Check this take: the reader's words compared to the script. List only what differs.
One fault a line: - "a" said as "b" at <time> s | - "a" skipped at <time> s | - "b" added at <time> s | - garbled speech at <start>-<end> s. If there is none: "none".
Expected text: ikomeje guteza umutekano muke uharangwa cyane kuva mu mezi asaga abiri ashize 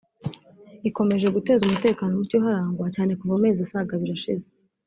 none